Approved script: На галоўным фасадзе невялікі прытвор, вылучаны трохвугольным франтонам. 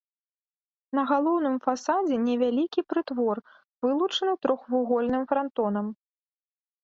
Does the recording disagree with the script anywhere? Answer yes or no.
no